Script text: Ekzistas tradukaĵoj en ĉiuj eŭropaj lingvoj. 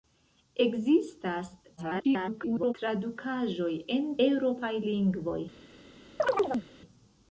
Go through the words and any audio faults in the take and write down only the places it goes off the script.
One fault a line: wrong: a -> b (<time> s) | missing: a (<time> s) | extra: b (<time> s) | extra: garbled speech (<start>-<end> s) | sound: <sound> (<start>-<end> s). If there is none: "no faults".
extra: garbled speech (1.8-2.7 s)
missing: ĉiuj (4.1 s)
sound: chirp (6.2-6.7 s)